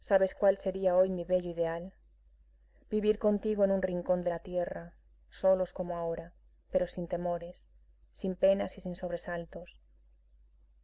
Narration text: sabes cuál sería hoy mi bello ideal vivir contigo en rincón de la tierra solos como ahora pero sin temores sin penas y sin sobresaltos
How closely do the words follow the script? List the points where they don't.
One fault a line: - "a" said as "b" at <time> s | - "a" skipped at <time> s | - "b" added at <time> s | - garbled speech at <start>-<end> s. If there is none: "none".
- "un" added at 3.7 s